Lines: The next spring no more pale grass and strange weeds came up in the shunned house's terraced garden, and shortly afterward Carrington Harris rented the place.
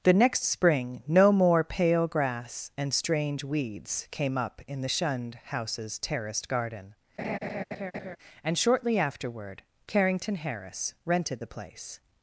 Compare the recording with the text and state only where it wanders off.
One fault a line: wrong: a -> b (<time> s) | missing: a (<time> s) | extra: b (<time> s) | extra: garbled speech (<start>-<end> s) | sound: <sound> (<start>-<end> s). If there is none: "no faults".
sound: laugh (7.2-8.2 s)